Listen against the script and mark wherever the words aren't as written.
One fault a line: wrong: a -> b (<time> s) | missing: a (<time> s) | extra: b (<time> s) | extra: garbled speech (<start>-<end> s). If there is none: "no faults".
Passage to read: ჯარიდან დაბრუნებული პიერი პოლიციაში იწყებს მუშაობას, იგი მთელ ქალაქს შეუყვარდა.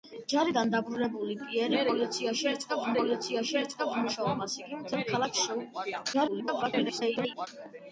extra: პოლიციაში იწყებს (3.0 s)
extra: garbled speech (6.1-7.5 s)